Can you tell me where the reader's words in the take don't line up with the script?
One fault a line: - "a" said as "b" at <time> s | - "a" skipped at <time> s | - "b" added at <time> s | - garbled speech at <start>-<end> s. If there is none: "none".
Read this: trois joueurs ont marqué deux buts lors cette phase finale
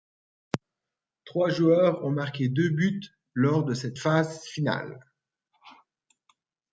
- "de" added at 3.6 s